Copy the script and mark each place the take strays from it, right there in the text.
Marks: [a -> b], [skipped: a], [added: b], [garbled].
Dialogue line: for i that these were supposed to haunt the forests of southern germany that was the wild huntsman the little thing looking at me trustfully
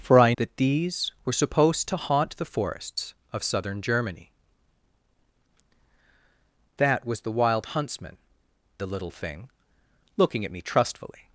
for i that these were supposed to haunt the forests of southern germany that was the wild huntsman the little thing looking at me trustfully